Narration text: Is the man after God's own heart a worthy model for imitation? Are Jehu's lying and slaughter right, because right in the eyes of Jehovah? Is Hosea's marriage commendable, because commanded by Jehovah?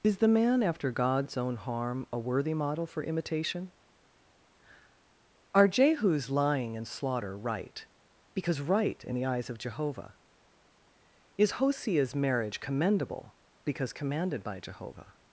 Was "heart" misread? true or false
true